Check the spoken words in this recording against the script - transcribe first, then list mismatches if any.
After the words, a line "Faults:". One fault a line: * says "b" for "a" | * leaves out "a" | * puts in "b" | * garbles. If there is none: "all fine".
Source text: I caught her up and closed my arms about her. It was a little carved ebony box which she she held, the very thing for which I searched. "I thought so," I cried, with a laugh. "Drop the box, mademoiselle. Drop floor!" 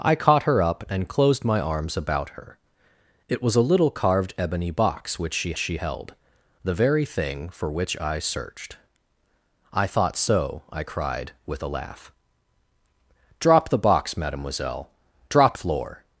I caught her up and closed my arms about her. It was a little carved ebony box which she she held, the very thing for which I searched. "I thought so," I cried, with a laugh. "Drop the box, mademoiselle. Drop floor!"
Faults:
all fine